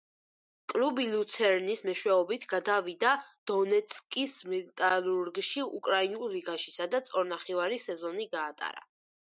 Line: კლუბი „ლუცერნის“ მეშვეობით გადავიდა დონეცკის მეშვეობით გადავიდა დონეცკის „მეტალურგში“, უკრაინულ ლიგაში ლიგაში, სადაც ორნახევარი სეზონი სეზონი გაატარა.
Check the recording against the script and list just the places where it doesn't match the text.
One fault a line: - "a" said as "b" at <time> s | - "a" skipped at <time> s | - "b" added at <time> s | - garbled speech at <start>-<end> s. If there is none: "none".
- "მეშვეობით გადავიდა დონეცკის" skipped at 4.4 s
- "ლიგაში" skipped at 6.8 s
- "სეზონი" skipped at 8.3 s